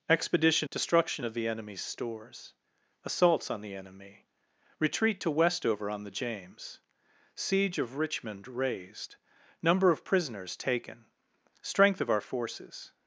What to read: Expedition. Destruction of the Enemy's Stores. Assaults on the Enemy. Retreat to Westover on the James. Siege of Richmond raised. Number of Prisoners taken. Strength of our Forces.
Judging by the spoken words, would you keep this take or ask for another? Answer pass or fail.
pass